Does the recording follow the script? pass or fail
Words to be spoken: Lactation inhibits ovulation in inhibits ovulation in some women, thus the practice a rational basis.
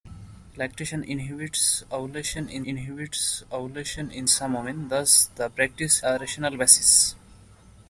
pass